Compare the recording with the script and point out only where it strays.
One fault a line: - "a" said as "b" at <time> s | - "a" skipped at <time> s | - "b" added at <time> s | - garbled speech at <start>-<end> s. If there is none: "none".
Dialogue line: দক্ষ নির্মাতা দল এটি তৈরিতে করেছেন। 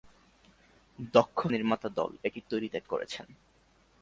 none